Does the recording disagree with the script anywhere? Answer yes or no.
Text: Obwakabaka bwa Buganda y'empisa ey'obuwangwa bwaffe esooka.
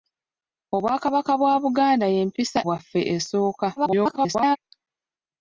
yes